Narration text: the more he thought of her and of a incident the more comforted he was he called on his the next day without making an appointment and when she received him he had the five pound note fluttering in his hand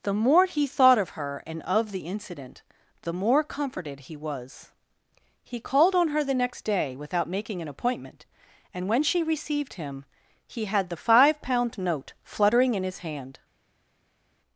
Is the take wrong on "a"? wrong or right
wrong